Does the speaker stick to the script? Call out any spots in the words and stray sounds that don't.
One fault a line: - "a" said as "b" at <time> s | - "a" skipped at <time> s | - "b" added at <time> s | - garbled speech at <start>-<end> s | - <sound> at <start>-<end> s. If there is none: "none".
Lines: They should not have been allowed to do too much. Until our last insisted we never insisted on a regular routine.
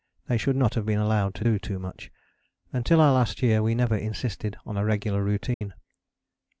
- "insisted" said as "year" at 3.4 s
- dropout at 5.5-5.6 s